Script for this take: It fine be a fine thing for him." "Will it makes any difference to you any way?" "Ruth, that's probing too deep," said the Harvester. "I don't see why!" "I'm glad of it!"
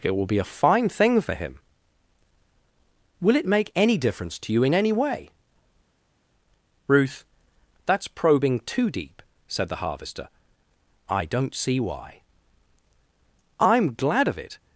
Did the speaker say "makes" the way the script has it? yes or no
no